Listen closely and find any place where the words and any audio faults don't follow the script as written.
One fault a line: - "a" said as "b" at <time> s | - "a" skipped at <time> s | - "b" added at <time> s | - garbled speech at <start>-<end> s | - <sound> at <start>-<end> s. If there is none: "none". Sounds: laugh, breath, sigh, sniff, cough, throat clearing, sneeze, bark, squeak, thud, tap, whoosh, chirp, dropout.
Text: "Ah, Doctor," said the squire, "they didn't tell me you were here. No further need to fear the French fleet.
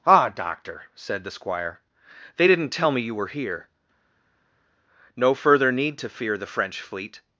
none